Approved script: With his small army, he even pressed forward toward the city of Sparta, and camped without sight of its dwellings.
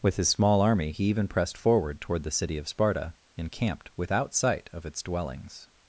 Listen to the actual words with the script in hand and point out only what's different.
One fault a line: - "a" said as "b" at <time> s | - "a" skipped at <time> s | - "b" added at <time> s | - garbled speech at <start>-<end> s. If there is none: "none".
none